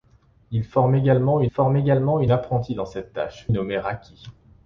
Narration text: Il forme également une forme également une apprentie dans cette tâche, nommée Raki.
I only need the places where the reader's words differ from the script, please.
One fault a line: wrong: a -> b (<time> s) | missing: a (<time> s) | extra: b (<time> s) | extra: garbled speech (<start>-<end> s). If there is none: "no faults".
no faults